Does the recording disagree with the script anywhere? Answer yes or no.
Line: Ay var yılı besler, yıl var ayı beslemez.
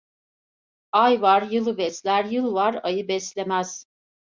no